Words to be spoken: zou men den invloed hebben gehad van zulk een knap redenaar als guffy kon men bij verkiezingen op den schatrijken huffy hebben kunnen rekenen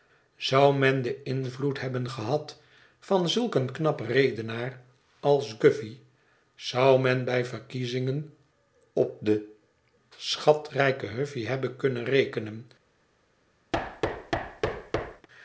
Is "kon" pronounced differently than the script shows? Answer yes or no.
yes